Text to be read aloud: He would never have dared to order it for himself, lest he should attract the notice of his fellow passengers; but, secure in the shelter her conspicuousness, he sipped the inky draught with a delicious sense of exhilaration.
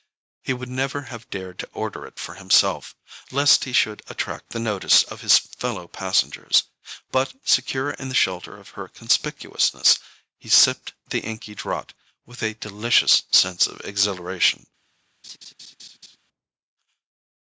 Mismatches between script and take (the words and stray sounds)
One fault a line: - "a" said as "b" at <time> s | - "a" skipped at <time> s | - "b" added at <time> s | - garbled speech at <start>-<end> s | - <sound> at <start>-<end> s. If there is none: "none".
- "of" added at 8.6 s
- laugh at 15.2-16.2 s